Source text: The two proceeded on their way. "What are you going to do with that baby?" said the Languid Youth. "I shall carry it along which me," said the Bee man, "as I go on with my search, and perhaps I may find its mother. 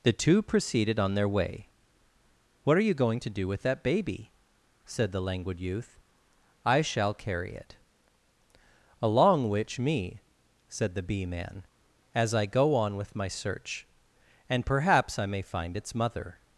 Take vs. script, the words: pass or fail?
pass